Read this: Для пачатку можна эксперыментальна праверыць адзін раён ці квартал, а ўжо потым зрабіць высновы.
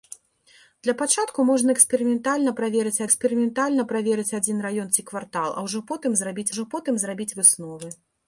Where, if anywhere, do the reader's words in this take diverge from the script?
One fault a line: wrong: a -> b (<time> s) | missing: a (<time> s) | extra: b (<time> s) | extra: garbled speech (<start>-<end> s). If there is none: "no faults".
extra: эксперыментальна праверыць (3.1 s)
extra: ўжо потым зрабіць (6.5 s)